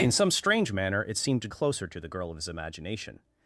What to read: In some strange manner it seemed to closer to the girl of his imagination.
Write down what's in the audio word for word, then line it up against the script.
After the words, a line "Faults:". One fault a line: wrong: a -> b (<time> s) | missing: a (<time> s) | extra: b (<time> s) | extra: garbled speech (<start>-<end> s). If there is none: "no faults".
In some strange manner it seemed to closer to the girl of his imagination.
Faults:
no faults